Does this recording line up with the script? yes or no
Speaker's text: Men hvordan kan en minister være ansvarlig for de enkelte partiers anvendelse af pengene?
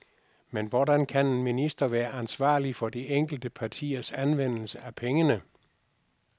yes